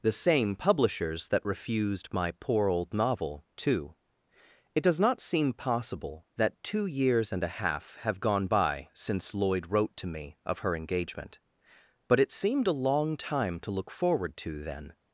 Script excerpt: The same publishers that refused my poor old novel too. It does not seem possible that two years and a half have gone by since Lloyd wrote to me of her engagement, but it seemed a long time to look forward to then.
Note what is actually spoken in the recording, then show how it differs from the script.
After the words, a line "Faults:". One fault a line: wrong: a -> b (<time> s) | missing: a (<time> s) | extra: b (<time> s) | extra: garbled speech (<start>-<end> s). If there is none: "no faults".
The same publishers that refused my poor old novel too. It does not seem possible that two years and a half have gone by since Lloyd wrote to me of her engagement, but it seemed a long time to look forward to then.
Faults:
no faults